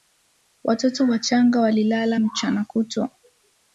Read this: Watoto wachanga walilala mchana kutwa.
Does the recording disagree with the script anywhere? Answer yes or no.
no